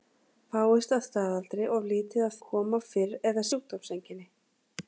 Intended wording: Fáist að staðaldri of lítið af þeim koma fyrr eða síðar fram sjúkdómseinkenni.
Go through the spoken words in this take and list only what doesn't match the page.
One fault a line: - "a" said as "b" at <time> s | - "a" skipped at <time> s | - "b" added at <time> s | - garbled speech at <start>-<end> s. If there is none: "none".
- "þeim" skipped at 2.4 s
- "síðar fram" skipped at 3.4 s